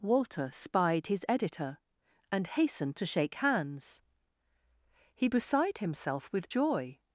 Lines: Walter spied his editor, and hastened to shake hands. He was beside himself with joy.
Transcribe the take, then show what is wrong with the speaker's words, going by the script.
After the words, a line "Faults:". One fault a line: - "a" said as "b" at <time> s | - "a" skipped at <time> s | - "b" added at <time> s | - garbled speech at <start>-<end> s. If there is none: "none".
Walter spied his editor, and hastened to shake hands. He beside himself with joy.
Faults:
- "was" skipped at 5.3 s